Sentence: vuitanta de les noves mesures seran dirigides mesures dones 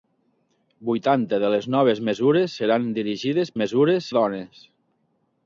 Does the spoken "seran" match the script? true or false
true